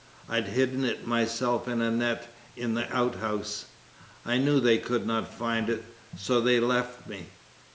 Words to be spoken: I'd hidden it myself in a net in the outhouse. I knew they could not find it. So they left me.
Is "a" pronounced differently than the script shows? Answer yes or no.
no